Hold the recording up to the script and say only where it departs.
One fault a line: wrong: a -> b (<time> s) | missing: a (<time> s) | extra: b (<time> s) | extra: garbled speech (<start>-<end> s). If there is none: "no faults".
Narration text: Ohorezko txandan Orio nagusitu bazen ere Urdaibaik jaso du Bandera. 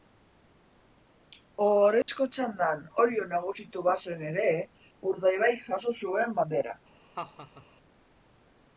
wrong: du -> zuen (6.0 s)